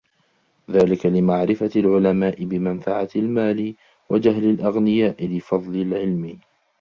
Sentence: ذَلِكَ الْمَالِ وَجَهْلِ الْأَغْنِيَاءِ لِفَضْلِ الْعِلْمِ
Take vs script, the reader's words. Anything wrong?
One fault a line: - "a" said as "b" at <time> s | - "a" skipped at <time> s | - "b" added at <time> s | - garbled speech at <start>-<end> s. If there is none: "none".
- "لِمَعْرِفَةِ الْعُلَمَاءِ بِمَنْفَعَةِ" added at 1.1 s